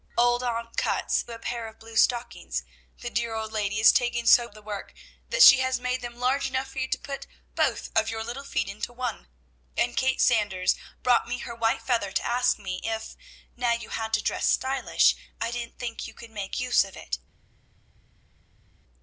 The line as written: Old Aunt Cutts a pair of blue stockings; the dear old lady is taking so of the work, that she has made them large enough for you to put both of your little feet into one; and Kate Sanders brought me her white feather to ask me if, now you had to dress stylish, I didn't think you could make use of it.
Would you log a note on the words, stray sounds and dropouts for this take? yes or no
no